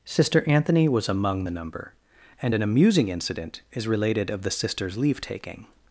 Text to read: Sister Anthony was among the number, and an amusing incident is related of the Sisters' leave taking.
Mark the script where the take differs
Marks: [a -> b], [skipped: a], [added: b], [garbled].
Sister Anthony was among the number, and an amusing incident is related of the Sisters' leave taking.